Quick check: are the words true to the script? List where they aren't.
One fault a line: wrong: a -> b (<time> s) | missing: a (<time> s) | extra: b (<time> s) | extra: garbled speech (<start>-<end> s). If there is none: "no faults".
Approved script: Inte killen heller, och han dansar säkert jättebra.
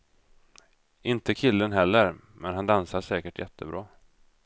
wrong: och -> men (2.3 s)